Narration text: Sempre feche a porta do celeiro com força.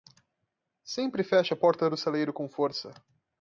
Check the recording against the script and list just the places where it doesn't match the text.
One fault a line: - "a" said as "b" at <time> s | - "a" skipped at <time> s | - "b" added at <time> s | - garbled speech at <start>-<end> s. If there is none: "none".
none